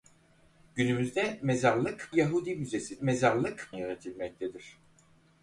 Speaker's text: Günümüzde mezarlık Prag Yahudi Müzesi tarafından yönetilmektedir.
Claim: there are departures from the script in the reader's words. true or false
true